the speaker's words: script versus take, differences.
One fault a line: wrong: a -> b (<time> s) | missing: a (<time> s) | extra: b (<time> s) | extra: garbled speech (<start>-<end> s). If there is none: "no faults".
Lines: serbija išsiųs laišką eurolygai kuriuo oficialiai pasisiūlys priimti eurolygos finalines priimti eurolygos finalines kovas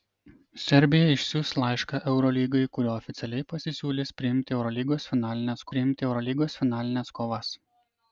no faults